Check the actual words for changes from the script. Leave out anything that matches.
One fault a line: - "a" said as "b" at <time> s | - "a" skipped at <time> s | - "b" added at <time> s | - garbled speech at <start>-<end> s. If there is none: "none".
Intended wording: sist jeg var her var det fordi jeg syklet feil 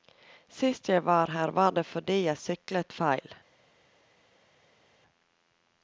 none